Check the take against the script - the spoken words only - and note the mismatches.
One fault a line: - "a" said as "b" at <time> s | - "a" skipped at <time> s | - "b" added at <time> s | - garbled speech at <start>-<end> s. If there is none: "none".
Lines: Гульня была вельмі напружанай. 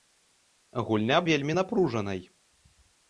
- "была" skipped at 1.2 s